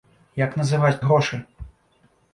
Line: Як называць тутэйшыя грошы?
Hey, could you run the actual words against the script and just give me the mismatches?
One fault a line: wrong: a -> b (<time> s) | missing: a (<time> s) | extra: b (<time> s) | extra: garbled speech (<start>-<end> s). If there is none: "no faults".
missing: тутэйшыя (1.0 s)